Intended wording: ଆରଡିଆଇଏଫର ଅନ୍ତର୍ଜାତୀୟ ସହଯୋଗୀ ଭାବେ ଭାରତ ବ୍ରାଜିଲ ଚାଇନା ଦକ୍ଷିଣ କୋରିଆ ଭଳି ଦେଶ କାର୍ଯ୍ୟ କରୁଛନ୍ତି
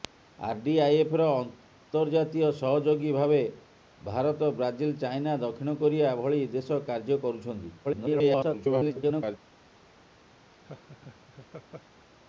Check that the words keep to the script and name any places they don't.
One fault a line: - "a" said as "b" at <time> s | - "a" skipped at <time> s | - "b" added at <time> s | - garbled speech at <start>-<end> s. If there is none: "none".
- garbled speech at 7.8-9.4 s